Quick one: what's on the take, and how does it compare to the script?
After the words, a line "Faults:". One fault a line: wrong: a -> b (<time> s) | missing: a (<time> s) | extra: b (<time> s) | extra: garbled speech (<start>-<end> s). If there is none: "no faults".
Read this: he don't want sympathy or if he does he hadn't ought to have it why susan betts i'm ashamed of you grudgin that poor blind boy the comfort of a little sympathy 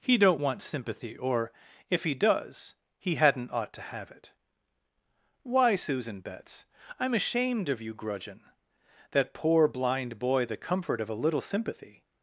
he don't want sympathy or if he does he hadn't ought to have it why susan betts i'm ashamed of you grudgin that poor blind boy the comfort of a little sympathy
Faults:
no faults